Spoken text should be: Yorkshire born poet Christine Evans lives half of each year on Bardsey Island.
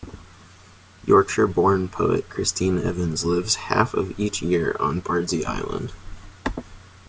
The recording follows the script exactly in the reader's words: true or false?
true